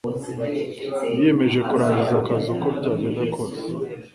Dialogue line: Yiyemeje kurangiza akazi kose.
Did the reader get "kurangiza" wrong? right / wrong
right